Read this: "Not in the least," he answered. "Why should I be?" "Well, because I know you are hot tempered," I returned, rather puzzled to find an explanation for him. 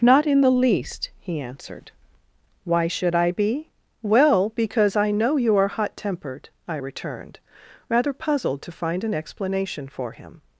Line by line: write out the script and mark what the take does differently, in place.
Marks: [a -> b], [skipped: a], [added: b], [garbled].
"Not in the least," he answered. "Why should I be?" "Well, because I know you are hot tempered," I returned, rather puzzled to find an explanation for him.